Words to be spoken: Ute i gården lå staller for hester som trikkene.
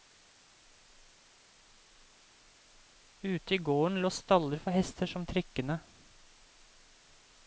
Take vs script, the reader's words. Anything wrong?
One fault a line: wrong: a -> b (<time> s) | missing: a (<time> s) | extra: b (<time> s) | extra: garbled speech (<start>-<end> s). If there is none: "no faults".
no faults